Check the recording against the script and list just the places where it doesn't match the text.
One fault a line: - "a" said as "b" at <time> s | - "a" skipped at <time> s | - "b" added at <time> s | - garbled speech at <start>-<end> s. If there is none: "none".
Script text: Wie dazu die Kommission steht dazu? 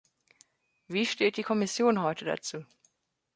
- "dazu" said as "steht" at 1.1 s
- "steht" said as "heute" at 2.0 s